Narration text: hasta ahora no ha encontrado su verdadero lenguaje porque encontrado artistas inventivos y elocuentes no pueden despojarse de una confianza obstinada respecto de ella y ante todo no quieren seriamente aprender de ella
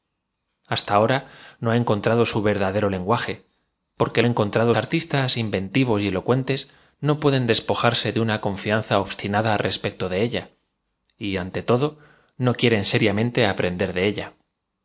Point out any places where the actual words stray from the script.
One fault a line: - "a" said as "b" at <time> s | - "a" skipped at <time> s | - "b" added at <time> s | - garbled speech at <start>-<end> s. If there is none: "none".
none